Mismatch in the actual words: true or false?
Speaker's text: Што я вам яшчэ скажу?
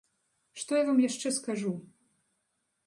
false